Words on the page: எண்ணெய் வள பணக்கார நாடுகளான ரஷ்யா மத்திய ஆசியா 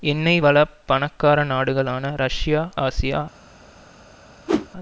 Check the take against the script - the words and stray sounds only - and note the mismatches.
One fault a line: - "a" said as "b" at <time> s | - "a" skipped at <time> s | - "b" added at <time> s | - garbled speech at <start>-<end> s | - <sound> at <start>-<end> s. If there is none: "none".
- "மத்திய" skipped at 2.6 s
- whoosh at 4.5-4.7 s